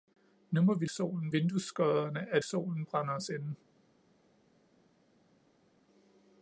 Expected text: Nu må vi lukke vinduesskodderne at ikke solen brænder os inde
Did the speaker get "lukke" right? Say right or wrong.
wrong